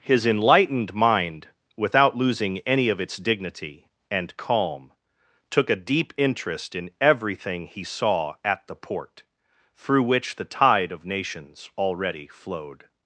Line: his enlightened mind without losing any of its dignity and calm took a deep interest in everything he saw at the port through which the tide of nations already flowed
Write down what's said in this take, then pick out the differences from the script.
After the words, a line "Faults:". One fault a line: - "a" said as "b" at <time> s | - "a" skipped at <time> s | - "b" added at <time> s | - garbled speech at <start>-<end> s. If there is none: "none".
his enlightened mind without losing any of its dignity and calm took a deep interest in everything he saw at the port through which the tide of nations already flowed
Faults:
none